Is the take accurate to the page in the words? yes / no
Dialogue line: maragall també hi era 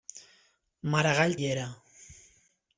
no